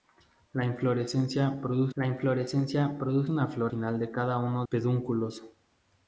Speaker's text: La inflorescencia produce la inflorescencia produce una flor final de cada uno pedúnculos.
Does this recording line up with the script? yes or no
yes